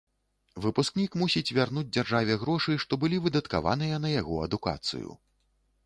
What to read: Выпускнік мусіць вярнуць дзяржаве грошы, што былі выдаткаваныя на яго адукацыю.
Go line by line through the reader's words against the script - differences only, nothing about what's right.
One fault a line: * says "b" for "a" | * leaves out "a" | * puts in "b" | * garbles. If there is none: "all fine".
all fine